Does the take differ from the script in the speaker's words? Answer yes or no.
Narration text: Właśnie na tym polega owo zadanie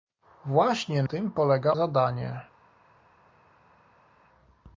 yes